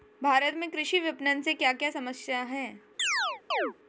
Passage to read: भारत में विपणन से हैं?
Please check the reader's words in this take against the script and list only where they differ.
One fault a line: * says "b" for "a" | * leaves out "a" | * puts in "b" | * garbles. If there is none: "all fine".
* puts in "कृषि"
* puts in "क्या क्या समस्या"